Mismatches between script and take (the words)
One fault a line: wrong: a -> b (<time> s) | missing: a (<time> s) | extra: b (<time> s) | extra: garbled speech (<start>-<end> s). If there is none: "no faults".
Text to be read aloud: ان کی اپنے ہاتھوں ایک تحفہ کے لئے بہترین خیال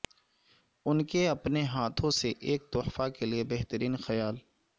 wrong: کی -> کے (1.1 s)
extra: سے (2.1 s)